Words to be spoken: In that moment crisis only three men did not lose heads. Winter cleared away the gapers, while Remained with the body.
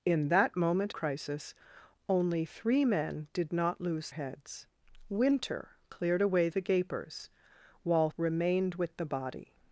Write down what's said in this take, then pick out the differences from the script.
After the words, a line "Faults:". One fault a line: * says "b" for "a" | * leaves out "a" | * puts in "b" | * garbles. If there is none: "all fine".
In that moment crisis only three men did not lose heads. Winter cleared away the gapers, while Remained with the body.
Faults:
all fine